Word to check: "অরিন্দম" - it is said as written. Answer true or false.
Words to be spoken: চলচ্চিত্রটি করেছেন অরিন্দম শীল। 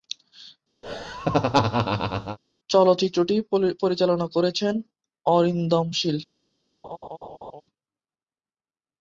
true